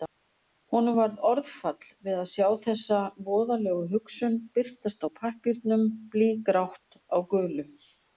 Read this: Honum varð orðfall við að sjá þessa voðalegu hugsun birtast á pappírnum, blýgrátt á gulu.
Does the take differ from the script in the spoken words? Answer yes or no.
no